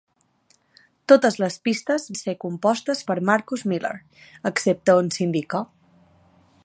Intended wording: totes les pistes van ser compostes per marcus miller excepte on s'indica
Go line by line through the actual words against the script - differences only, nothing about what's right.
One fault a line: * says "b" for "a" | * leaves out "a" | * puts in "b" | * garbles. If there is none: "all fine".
* leaves out "van"